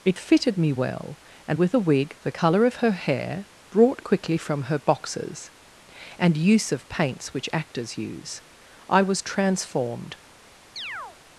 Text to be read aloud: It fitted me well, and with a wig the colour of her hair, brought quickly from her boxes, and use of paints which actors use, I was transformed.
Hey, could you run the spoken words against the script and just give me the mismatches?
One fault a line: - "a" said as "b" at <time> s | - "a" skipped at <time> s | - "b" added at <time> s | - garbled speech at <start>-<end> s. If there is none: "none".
none